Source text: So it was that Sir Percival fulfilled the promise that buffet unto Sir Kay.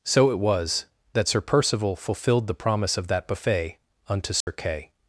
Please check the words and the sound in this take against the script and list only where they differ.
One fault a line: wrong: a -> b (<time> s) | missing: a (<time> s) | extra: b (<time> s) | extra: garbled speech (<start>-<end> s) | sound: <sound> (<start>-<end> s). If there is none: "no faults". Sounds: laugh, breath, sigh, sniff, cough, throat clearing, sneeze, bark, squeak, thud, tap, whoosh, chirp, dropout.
extra: of (3.0 s)
sound: dropout (4.4-4.5 s)